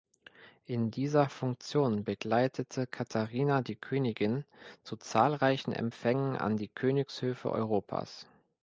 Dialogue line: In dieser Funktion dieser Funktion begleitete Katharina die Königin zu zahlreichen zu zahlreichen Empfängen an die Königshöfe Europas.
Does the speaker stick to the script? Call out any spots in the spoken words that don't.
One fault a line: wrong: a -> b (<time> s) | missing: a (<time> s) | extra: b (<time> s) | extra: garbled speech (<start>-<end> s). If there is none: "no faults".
missing: dieser Funktion (2.0 s)
missing: zu zahlreichen (5.7 s)